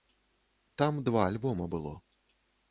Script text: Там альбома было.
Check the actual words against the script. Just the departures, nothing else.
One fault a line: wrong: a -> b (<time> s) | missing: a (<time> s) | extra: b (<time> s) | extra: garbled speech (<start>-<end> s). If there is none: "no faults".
extra: два (1.0 s)